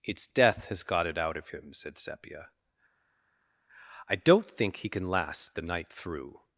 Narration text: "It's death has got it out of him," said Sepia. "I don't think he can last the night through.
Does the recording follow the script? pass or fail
pass